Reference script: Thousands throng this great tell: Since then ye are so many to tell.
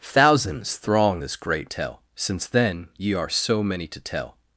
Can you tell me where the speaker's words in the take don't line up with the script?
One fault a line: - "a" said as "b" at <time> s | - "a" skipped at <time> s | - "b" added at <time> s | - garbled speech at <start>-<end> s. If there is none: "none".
none